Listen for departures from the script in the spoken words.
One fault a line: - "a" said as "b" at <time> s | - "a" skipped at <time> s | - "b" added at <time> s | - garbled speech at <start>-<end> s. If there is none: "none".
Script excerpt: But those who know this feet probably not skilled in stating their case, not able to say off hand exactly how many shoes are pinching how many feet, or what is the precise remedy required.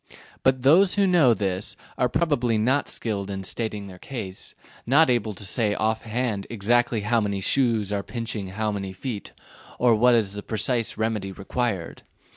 - "feet" said as "are" at 1.9 s